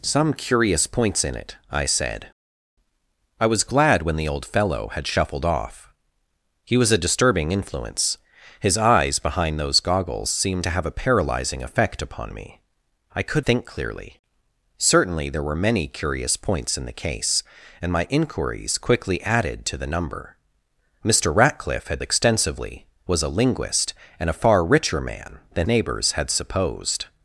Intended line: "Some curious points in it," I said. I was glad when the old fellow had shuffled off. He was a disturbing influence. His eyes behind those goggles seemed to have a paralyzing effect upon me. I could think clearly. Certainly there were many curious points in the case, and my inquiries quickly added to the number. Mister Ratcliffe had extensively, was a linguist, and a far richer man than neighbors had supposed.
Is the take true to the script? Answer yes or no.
yes